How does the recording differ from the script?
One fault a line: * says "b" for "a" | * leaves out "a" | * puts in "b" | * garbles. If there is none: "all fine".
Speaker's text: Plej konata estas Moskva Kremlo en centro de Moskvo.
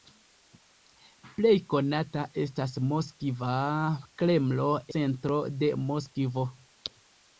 * leaves out "en"